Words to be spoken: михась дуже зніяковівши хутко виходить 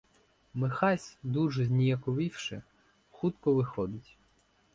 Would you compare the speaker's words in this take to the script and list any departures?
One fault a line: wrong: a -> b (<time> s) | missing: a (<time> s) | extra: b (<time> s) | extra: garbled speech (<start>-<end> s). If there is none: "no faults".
no faults